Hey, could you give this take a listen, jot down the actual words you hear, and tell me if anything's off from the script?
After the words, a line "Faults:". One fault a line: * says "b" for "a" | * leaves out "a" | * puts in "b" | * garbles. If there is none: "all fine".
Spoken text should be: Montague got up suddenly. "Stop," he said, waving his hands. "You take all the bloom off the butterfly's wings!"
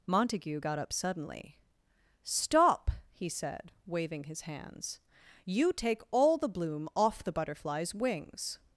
Montague got up suddenly. "Stop," he said, waving his hands. "You take all the bloom off the butterfly's wings!"
Faults:
all fine